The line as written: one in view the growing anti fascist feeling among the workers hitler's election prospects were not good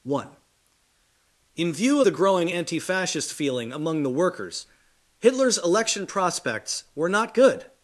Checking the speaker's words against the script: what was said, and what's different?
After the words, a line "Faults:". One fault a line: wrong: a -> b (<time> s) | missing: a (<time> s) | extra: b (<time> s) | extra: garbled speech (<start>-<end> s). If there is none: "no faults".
one in view the growing anti fascist feeling among the workers hitler's election prospects were not good
Faults:
no faults